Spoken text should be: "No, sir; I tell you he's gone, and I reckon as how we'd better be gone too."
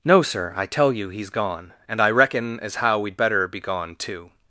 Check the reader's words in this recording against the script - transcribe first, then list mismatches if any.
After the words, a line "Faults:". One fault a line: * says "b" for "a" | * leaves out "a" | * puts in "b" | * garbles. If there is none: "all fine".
"No, sir; I tell you he's gone, and I reckon as how we'd better be gone too."
Faults:
all fine